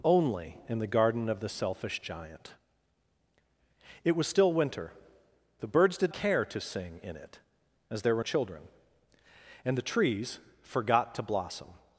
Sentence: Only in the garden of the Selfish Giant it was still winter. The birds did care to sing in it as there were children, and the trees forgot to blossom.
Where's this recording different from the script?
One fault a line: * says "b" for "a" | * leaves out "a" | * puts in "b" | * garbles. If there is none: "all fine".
all fine